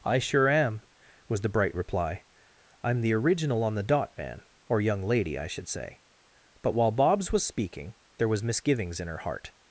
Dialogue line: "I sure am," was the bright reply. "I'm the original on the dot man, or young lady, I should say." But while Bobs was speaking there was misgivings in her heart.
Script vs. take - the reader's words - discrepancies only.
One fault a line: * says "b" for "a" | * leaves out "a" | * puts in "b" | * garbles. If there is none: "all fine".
all fine